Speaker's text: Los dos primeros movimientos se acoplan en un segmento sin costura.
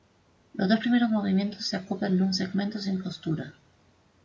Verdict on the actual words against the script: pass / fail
pass